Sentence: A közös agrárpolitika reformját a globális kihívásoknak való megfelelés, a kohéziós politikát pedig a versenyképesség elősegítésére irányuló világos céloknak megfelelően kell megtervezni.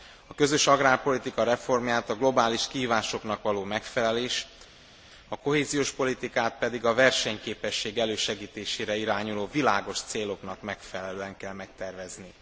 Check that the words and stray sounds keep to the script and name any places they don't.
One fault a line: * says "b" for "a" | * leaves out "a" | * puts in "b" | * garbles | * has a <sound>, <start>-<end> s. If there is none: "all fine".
all fine